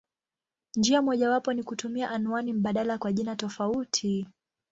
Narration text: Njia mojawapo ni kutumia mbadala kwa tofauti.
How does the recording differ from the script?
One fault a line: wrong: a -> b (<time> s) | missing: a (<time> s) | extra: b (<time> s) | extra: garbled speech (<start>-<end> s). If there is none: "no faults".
extra: anwani (2.1 s)
extra: jina (3.1 s)